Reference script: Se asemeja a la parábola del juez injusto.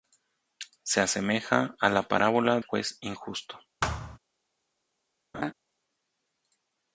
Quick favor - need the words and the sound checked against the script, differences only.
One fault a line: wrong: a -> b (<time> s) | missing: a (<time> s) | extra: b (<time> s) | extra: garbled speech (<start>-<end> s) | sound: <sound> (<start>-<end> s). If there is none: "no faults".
missing: del (2.6 s)
sound: thud (3.8-4.2 s)
sound: laugh (5.3-5.5 s)